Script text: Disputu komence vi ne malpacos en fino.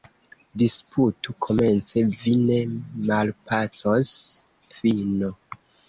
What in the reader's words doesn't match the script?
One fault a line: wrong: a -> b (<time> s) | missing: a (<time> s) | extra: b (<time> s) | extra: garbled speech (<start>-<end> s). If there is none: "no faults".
missing: en (4.1 s)